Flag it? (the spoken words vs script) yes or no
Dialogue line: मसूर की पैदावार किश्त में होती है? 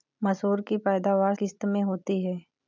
no